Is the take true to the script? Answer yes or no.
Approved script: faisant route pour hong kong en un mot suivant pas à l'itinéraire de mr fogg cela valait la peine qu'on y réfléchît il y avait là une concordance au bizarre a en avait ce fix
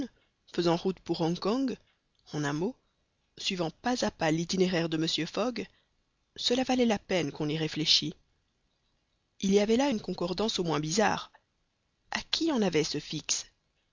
no